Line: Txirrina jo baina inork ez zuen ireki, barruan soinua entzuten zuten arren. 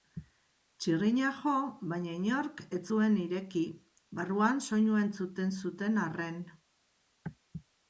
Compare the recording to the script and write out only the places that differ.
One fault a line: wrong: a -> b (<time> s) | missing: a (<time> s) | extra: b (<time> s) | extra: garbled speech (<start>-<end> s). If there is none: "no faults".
no faults